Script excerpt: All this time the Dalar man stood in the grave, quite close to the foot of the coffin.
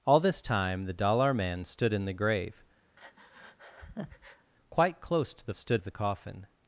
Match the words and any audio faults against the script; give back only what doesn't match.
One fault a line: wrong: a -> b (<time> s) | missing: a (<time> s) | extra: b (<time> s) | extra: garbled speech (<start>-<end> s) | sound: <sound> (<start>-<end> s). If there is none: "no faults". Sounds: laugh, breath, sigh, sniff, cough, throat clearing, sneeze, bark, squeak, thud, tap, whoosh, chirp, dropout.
sound: breath (3.0-4.5 s)
wrong: foot -> stood (5.5 s)